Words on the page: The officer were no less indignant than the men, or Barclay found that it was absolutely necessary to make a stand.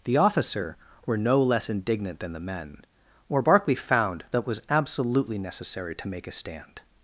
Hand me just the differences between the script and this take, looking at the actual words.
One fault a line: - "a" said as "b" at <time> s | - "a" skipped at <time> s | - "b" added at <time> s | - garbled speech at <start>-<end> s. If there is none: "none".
none